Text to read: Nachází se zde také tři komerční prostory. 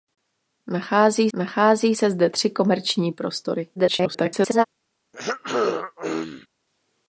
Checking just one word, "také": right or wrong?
wrong